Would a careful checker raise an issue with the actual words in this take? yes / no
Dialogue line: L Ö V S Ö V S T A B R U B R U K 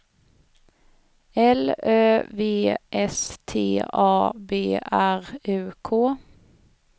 yes